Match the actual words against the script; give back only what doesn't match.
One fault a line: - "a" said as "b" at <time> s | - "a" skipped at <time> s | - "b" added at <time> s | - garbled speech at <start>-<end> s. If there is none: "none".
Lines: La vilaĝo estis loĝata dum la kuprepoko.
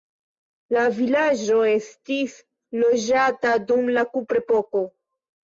none